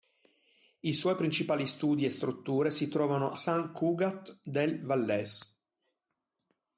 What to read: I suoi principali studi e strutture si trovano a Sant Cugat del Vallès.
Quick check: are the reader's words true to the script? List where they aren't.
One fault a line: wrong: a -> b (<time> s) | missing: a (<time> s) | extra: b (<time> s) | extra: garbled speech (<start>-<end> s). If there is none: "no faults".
missing: a (3.4 s)